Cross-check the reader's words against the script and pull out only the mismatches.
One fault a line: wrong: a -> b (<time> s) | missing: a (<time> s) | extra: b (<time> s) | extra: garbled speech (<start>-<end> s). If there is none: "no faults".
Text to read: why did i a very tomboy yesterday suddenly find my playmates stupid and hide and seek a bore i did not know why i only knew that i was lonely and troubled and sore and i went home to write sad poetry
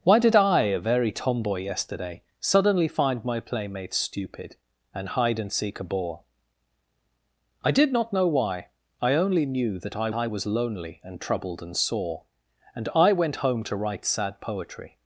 extra: i (10.1 s)